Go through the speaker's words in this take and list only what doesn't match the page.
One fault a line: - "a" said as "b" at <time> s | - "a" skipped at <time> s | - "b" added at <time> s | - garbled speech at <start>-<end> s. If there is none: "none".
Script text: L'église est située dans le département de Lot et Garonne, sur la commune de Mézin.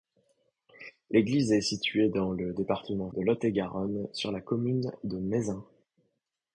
none